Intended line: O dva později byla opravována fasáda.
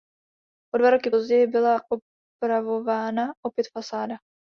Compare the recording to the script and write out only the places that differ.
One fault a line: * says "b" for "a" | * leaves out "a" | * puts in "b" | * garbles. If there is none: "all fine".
* puts in "roky"
* puts in "opět"